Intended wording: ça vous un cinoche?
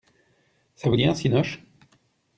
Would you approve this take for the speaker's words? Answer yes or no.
no